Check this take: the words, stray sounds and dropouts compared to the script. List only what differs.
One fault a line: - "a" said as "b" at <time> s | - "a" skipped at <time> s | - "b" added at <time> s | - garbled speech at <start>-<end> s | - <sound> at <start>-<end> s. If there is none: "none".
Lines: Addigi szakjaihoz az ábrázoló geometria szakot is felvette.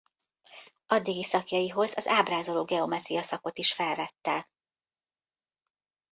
none